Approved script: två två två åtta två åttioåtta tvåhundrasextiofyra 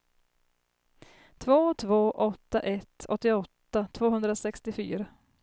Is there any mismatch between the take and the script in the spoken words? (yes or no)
yes